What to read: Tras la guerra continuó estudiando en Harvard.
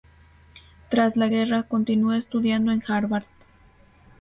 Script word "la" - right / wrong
right